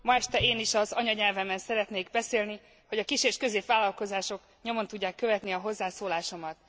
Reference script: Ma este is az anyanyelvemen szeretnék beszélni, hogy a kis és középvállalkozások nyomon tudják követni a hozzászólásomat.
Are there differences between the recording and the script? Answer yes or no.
yes